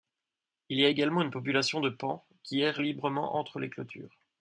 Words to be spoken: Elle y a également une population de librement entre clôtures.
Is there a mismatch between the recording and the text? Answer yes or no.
yes